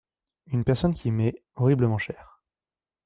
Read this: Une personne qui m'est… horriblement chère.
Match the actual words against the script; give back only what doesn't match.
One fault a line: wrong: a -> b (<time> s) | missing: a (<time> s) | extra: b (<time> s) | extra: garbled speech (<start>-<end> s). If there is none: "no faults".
no faults